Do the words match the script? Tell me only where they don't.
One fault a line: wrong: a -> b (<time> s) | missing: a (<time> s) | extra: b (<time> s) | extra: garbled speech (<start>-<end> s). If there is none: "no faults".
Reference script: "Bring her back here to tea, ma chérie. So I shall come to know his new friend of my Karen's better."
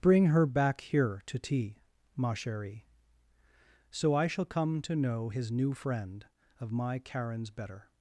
no faults